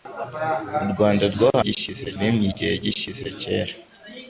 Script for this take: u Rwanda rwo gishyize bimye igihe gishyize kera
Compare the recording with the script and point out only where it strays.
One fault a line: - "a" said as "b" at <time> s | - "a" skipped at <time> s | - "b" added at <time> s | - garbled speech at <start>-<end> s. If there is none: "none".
none